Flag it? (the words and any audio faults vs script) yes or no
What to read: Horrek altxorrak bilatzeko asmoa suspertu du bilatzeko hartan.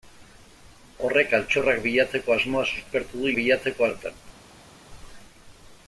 no